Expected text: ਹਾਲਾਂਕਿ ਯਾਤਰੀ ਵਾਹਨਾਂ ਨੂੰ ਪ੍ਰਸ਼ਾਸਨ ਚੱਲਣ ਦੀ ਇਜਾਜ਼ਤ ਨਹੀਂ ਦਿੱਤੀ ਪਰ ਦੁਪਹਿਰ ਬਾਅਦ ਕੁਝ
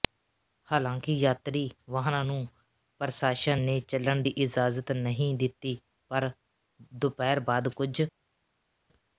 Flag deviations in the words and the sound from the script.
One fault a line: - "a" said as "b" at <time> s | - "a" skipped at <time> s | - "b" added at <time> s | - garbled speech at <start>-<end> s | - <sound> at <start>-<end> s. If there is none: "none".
- "ਨੇ" added at 3.6 s